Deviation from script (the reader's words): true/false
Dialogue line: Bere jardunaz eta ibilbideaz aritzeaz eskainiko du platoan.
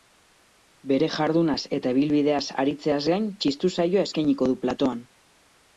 true